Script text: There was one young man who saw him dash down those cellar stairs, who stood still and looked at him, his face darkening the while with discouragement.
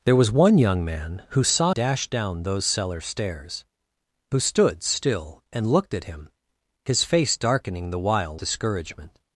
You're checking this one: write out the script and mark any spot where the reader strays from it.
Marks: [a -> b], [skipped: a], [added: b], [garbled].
There was one young man who saw [skipped: him] dash down those cellar stairs, who stood still and looked at him, his face darkening the while [skipped: with] discouragement.